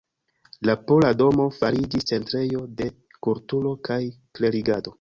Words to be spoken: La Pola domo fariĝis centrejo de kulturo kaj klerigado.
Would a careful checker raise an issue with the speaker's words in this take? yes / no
no